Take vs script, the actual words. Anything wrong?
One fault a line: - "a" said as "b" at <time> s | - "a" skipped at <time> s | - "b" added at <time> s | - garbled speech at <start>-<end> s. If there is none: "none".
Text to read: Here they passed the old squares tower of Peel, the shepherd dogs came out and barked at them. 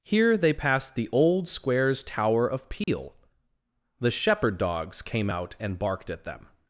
none